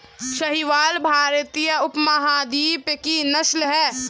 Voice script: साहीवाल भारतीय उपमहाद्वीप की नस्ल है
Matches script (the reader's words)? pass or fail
pass